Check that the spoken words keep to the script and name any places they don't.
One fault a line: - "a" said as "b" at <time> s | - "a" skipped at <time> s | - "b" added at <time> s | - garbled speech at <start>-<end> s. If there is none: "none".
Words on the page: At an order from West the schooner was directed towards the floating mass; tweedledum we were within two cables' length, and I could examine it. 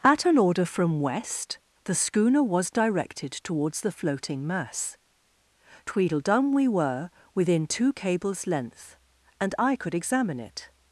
none